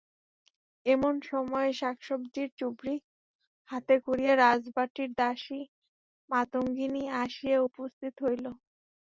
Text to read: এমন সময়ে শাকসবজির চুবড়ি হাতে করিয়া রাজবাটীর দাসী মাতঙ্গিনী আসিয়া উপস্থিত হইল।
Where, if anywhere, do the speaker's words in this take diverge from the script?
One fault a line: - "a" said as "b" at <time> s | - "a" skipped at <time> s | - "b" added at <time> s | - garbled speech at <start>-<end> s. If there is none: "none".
none